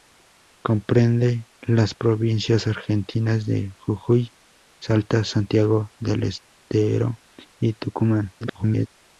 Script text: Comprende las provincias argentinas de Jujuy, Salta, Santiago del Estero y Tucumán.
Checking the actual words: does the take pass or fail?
fail